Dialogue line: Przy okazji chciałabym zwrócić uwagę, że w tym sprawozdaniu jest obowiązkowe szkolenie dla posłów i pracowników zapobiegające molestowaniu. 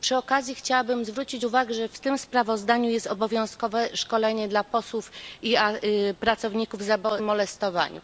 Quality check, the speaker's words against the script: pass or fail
fail